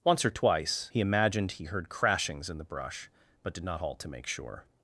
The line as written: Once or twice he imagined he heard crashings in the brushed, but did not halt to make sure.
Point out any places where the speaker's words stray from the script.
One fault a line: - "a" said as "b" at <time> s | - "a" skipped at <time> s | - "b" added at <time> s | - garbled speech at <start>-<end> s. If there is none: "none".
- "brushed" said as "brush" at 2.6 s